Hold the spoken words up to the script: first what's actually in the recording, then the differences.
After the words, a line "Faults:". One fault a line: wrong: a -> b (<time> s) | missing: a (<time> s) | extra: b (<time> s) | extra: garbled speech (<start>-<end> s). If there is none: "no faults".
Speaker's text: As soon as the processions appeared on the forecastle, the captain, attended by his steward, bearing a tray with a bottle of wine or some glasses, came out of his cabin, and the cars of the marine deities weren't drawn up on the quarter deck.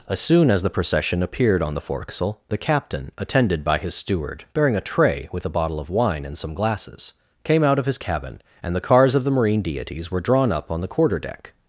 As soon as the procession appeared on the forecastle, the captain, attended by his steward, bearing a tray with a bottle of wine and some glasses, came out of his cabin, and the cars of the marine deities were drawn up on the quarter deck.
Faults:
wrong: processions -> procession (0.7 s)
wrong: or -> and (6.3 s)
wrong: weren't -> were (10.1 s)